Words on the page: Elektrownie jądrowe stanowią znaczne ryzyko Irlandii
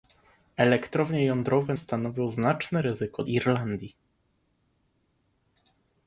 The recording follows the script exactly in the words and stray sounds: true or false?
true